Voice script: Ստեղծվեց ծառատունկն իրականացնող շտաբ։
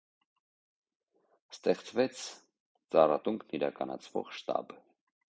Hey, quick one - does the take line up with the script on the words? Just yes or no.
yes